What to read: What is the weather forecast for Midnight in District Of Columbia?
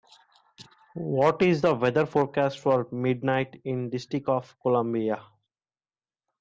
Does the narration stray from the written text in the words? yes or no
no